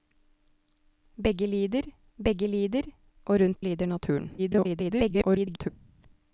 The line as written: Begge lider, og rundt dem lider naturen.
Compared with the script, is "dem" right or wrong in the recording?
wrong